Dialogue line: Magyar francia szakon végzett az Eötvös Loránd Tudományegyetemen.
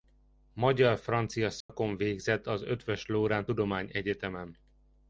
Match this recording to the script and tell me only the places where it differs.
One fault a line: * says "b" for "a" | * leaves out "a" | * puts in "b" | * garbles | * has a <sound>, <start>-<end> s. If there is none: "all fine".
* has a dropout, 1.6-1.7 s